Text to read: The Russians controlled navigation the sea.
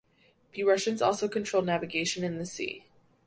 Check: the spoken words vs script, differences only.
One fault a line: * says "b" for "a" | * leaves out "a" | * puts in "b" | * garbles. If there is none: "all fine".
* puts in "also"
* puts in "in"